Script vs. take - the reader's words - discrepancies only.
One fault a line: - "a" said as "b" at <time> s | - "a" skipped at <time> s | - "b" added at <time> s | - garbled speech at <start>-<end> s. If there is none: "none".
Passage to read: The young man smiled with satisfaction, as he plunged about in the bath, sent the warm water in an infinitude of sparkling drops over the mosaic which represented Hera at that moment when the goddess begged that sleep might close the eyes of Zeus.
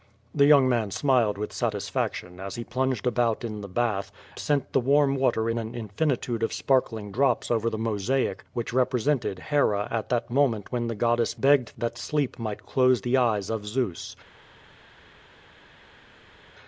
none